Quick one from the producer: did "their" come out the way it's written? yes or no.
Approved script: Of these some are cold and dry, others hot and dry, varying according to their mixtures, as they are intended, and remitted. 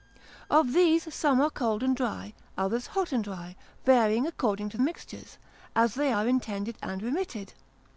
no